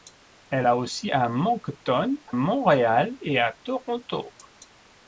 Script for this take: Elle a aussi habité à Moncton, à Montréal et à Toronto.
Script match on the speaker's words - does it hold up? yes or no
no